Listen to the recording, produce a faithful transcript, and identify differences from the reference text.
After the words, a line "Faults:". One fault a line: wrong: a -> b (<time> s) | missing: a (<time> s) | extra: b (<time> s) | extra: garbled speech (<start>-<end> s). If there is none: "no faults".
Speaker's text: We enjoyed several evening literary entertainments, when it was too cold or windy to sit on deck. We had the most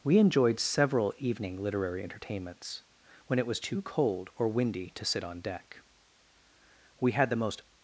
We enjoyed several evening literary entertainments, when it was too cold or windy to sit on deck. We had the most
Faults:
no faults